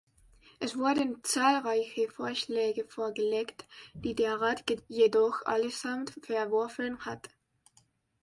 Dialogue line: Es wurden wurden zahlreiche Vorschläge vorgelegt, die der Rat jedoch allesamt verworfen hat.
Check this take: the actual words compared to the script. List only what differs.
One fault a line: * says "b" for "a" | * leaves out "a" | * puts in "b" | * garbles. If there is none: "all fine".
* leaves out "wurden"